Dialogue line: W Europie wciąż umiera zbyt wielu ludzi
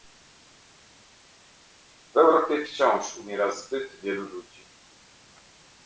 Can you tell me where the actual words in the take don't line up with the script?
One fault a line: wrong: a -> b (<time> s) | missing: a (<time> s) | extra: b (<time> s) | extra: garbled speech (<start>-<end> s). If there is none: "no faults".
no faults